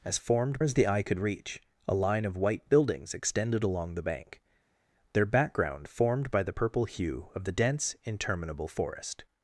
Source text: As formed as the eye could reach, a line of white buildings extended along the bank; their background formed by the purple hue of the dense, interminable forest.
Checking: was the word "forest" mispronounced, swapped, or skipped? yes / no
no